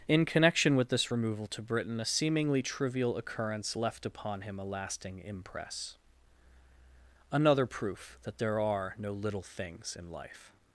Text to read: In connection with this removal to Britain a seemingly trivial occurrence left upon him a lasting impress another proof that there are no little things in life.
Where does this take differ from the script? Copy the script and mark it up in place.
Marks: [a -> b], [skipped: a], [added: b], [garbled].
In connection with this removal to Britain a seemingly trivial occurrence left upon him a lasting impress another proof that there are no little things in life.